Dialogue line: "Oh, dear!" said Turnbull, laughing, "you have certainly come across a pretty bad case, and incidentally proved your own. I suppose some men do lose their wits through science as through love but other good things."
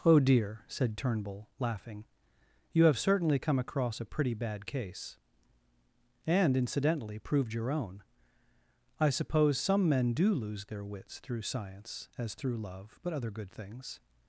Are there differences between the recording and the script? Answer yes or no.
no